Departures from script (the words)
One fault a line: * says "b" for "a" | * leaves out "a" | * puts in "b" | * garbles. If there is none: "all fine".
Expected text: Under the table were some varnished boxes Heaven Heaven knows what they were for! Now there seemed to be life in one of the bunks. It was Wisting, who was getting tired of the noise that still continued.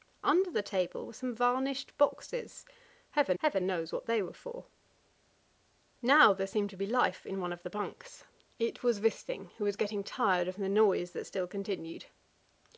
all fine